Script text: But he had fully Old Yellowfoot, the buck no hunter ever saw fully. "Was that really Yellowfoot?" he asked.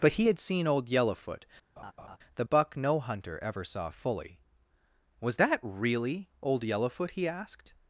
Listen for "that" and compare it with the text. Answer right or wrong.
right